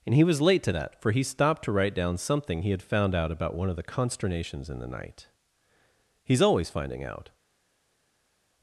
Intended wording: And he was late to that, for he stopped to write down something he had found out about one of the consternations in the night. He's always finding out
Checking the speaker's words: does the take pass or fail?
pass